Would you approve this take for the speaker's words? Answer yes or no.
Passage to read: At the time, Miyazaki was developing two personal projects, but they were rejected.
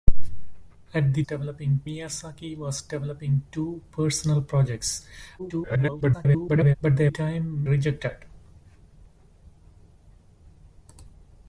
no